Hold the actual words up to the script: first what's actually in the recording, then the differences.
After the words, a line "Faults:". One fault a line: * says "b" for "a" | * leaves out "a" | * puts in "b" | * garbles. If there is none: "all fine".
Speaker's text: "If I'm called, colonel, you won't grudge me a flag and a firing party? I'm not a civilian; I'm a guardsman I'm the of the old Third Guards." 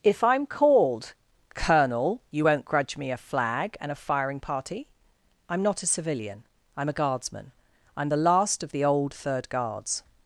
"If I'm called, colonel, you won't grudge me a flag and a firing party? I'm not a civilian; I'm a guardsman I'm the last of the old Third Guards."
Faults:
* puts in "last"